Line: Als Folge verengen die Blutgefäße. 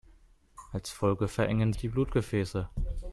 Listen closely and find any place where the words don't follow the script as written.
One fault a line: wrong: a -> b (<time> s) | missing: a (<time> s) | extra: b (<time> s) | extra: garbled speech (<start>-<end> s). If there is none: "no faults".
no faults